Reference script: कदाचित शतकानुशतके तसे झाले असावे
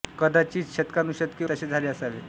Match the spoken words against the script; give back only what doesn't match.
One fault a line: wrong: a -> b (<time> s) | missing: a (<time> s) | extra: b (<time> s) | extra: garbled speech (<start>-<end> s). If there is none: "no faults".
no faults